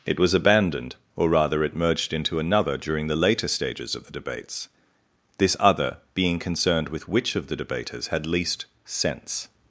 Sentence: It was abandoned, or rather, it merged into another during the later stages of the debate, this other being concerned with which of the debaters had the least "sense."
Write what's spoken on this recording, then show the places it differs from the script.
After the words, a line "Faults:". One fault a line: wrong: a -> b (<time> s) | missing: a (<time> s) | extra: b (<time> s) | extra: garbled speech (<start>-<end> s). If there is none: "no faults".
It was abandoned, or rather, it merged into another during the later stages of the debates, this other being concerned with which of the debaters had least "sense."
Faults:
wrong: debate -> debates (4.1 s)
missing: the (8.2 s)